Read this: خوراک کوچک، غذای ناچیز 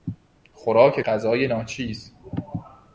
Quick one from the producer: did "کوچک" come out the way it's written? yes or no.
no